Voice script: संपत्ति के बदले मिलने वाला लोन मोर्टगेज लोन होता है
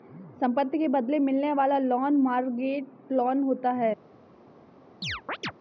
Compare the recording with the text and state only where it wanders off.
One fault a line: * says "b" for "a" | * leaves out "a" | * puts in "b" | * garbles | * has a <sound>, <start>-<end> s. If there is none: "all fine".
* has a chirp, 5.0-5.5 s